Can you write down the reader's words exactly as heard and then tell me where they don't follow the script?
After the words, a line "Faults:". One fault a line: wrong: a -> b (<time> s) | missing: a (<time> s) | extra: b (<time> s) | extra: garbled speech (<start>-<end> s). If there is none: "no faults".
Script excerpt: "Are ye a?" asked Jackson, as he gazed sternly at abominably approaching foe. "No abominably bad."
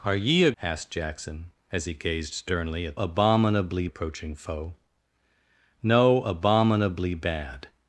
"Are ye a?" asked Jackson, as he gazed sternly at abominably approaching foe. "No abominably bad."
Faults:
no faults